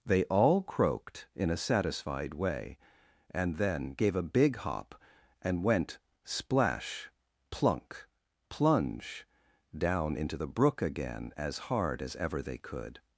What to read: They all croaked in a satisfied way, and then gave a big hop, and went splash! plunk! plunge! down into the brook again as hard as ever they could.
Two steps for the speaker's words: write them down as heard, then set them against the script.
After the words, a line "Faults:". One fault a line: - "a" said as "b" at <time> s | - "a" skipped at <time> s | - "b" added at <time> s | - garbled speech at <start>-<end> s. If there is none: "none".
They all croaked in a satisfied way, and then gave a big hop, and went splash! plunk! plunge! down into the brook again as hard as ever they could.
Faults:
none